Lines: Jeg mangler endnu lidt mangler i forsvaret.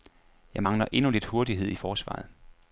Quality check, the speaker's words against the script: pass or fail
fail